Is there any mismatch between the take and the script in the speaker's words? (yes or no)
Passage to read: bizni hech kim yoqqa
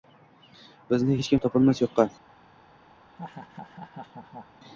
yes